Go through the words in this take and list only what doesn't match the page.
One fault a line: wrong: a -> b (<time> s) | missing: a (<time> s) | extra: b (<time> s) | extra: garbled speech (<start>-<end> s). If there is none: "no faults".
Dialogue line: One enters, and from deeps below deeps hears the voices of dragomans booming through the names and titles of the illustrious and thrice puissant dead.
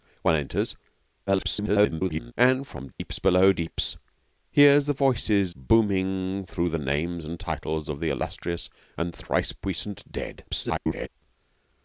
extra: garbled speech (1.3-2.3 s)
missing: of dragomans (5.6 s)
extra: garbled speech (10.5-11.1 s)